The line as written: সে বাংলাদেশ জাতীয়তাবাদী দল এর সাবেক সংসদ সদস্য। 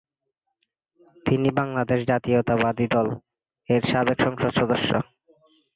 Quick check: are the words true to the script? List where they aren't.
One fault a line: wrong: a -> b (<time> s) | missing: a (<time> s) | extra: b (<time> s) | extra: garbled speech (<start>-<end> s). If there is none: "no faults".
wrong: সে -> তিনি (1.2 s)